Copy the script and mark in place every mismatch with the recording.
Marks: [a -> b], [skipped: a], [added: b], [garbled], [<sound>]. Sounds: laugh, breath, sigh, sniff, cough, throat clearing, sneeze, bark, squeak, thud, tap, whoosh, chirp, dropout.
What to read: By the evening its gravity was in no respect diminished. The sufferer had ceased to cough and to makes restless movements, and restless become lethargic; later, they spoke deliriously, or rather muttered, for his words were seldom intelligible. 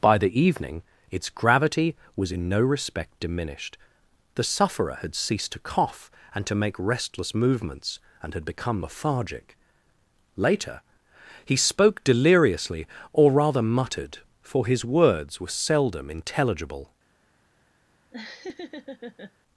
By the evening its gravity was in no respect diminished. The sufferer had ceased to cough and to [makes -> make] restless movements, and [restless -> had] become lethargic; later, [they -> he] spoke deliriously, or rather muttered, for his words were seldom intelligible. [laugh]